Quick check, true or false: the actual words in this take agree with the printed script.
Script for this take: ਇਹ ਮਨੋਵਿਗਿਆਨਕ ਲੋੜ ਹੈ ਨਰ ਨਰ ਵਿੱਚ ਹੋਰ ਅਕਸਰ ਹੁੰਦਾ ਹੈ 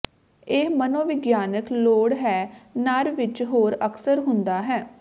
false